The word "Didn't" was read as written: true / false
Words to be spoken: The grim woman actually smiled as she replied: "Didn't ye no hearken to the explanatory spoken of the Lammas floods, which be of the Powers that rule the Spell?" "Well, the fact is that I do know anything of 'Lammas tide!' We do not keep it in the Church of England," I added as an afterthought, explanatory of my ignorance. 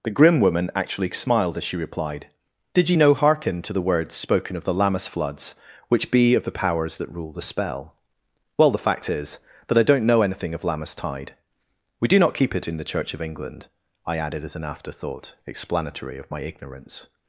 false